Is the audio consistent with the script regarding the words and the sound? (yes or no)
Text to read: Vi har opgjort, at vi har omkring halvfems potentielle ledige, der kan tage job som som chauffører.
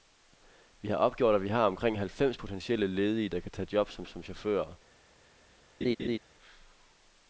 no